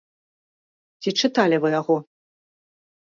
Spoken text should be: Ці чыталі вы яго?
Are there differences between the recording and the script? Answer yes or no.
no